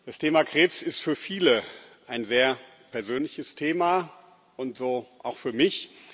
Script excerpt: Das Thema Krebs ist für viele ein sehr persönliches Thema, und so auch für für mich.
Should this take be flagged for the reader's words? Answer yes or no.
yes